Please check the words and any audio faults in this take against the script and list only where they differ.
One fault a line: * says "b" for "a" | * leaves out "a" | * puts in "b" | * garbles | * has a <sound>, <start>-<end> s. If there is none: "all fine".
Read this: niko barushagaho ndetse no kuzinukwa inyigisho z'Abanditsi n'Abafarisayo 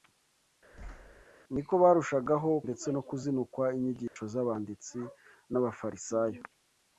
* has a thud, 0.7-1.2 s
* has a dropout, 4.1-4.2 s